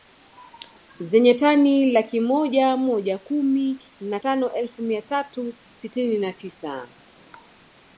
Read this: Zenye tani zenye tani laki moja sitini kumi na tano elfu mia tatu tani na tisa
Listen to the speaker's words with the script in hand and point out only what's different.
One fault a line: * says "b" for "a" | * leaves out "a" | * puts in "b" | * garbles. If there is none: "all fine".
* leaves out "zenye tani"
* says "moja" for "sitini"
* says "sitini" for "tani"